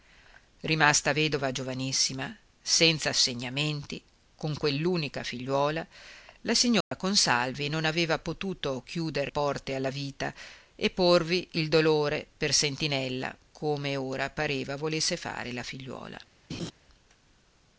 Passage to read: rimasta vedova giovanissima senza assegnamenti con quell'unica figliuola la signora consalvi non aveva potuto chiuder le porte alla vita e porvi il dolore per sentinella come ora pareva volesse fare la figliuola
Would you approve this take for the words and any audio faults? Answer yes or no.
no